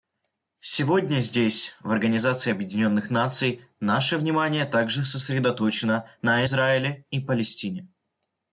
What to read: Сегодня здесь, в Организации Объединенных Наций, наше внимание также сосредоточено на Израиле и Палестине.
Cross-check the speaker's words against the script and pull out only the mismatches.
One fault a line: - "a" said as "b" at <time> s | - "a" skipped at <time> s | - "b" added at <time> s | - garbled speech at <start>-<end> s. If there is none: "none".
none